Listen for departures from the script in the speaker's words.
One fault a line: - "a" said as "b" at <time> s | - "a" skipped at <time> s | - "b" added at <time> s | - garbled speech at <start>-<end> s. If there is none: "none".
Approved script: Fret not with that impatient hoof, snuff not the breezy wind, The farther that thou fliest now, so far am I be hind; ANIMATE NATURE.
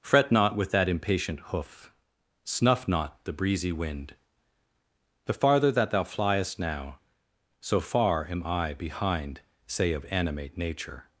- "be hind" said as "behind say of" at 8.7 s